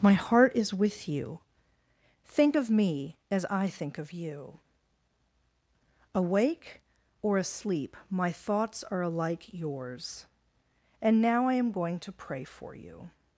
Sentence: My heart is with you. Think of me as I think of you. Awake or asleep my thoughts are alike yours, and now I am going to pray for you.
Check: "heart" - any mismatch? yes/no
no